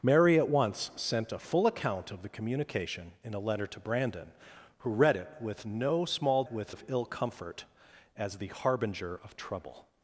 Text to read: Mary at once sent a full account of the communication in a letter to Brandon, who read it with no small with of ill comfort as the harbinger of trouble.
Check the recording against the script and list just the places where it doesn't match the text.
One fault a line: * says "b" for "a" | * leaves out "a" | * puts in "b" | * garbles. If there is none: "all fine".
all fine